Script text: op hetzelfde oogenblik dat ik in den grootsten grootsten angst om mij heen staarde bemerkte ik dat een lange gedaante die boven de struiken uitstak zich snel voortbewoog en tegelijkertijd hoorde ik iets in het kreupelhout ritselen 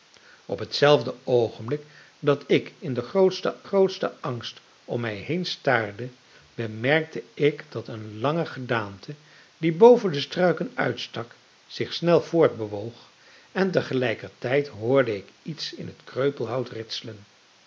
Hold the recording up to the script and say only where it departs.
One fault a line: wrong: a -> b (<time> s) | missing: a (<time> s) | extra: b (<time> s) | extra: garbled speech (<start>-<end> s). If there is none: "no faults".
no faults